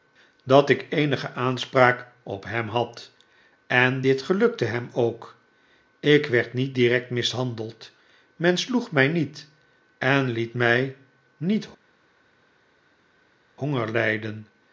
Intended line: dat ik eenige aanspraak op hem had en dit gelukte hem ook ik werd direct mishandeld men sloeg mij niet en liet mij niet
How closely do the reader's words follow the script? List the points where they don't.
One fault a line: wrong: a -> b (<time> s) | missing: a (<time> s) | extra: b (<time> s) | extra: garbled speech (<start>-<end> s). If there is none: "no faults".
extra: niet (6.5 s)